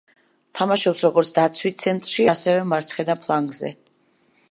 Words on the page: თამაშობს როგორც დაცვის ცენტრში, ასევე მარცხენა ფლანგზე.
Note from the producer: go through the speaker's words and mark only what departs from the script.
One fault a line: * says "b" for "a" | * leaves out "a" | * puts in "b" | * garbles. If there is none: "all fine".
all fine